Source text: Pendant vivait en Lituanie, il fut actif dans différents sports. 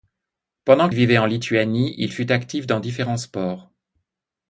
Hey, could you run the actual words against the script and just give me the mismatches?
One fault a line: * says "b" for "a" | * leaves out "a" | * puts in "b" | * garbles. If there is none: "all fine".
all fine